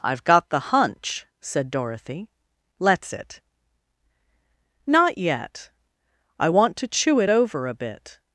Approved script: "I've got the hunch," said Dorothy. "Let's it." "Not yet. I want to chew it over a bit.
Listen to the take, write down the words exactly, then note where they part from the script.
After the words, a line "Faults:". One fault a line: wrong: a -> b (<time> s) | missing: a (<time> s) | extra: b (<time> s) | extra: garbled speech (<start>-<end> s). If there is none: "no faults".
"I've got the hunch," said Dorothy. "Let's it." "Not yet. I want to chew it over a bit.
Faults:
no faults